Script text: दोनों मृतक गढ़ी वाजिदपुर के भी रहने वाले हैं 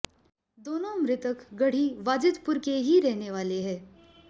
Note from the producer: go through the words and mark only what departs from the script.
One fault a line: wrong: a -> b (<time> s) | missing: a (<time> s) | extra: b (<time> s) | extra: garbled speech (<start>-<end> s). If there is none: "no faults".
wrong: भी -> ही (2.8 s)